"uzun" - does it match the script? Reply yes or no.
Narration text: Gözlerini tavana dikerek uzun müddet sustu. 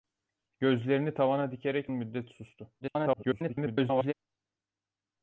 no